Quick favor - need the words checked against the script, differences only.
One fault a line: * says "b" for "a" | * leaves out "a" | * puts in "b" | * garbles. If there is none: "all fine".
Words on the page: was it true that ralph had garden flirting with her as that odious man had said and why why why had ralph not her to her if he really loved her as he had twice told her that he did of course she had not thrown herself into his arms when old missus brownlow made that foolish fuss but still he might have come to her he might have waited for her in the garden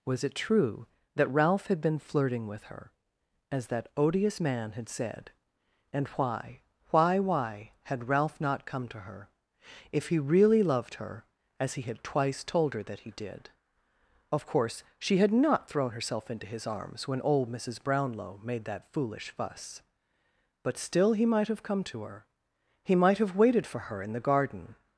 * says "been" for "garden"
* says "come" for "her"